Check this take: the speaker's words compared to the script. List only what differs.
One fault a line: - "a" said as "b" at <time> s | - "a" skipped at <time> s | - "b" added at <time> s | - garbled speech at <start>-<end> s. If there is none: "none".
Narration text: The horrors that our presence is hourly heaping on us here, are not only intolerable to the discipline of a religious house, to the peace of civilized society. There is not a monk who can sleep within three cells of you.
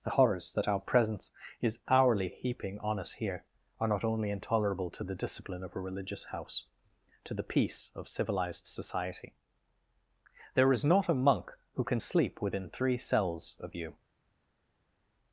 none